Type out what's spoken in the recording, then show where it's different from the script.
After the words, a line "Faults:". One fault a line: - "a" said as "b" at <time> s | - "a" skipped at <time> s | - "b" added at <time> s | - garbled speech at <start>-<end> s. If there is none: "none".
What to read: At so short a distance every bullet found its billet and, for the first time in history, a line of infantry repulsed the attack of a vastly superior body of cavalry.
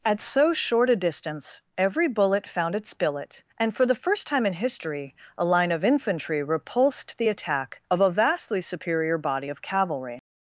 At so short a distance every bullet found its billet and, for the first time in history, a line of infantry repulsed the attack of a vastly superior body of cavalry.
Faults:
none